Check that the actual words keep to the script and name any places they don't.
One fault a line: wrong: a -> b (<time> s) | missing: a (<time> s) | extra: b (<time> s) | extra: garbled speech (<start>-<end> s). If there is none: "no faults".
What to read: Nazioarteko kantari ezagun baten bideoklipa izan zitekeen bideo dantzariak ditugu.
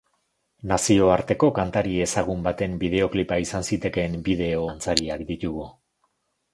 no faults